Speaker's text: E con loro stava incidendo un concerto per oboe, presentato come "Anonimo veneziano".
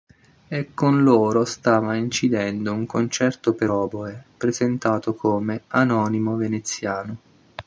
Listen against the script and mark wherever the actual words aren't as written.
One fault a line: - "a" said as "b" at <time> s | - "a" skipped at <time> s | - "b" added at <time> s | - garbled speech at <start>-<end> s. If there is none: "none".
none